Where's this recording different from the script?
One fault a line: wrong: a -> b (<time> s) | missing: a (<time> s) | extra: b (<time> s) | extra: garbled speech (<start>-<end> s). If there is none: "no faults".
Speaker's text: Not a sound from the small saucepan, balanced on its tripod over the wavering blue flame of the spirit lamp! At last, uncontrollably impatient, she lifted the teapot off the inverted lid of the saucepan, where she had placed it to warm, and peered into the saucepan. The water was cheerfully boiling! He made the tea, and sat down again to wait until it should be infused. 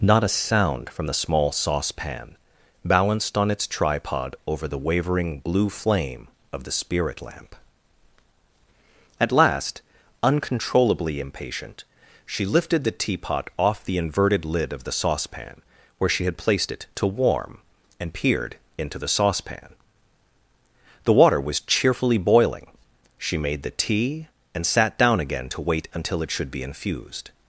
wrong: He -> She (23.2 s)